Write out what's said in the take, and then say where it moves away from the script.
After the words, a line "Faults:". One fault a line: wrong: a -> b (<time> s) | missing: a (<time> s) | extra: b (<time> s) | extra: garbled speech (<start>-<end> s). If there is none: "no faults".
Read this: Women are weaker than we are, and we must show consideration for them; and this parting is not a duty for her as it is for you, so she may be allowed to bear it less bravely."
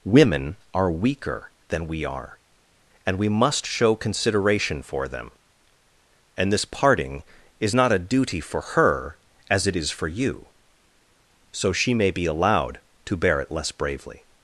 Women are weaker than we are, and we must show consideration for them; and this parting is not a duty for her as it is for you, so she may be allowed to bear it less bravely."
Faults:
no faults